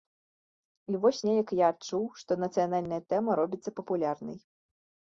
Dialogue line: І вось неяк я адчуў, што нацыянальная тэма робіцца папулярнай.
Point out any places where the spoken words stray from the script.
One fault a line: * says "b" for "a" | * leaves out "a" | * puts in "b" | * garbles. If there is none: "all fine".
all fine